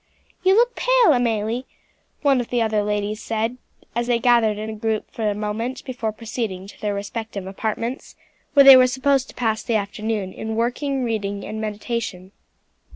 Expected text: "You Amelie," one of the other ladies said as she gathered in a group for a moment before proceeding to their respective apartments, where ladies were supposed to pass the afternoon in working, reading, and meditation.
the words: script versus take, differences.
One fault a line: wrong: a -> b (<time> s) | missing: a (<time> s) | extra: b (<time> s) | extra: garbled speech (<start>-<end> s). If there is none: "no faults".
extra: look pale (0.6 s)
wrong: she -> they (4.0 s)
wrong: ladies -> they (8.6 s)